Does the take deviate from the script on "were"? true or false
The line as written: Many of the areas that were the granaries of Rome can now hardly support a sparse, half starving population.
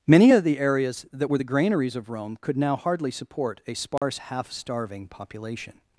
false